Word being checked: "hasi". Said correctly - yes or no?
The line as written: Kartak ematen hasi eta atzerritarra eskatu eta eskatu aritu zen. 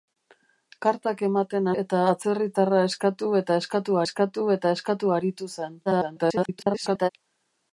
no